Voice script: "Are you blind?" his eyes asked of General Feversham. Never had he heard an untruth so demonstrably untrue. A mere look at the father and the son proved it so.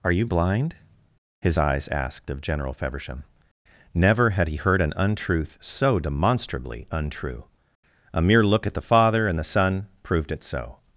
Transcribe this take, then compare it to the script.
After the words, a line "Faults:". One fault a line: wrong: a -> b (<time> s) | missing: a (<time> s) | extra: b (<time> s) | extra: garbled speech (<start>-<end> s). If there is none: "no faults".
"Are you blind?" his eyes asked of General Feversham. Never had he heard an untruth so demonstrably untrue. A mere look at the father and the son proved it so.
Faults:
no faults